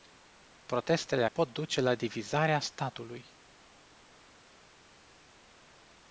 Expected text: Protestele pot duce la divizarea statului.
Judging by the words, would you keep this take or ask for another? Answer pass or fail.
pass